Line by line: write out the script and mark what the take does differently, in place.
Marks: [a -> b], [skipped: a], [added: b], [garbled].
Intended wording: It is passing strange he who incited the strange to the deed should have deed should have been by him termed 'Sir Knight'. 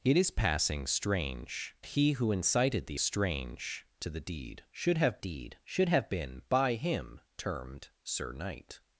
It is passing strange he who incited the strange to the deed should have deed should have been by him termed 'Sir Knight'.